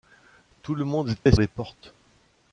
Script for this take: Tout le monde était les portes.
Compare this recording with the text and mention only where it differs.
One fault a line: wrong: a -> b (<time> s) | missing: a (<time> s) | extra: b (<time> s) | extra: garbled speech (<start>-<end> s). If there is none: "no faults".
no faults